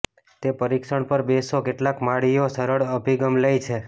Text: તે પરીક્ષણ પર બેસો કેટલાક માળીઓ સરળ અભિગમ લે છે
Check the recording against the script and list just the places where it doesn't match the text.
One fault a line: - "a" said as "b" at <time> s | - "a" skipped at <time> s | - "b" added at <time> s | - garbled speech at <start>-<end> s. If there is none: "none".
none